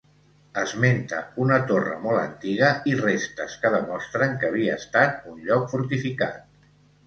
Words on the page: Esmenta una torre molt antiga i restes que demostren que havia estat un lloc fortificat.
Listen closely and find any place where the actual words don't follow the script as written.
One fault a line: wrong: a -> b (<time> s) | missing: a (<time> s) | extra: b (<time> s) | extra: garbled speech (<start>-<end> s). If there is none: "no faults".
no faults